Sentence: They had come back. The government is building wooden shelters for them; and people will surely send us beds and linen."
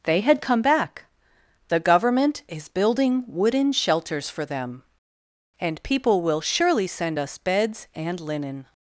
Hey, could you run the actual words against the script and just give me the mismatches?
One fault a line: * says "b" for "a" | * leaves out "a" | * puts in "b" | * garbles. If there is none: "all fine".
all fine